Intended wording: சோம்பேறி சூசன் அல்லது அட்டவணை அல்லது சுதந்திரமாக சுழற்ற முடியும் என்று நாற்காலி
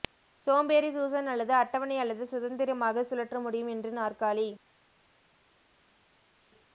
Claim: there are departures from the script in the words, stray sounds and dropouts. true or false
false